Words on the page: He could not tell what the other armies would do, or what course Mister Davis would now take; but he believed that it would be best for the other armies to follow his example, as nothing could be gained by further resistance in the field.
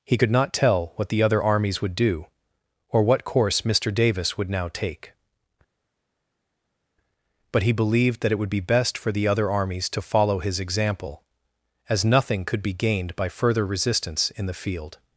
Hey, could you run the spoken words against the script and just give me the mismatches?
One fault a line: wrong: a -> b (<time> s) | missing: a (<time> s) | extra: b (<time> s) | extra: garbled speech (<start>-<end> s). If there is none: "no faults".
no faults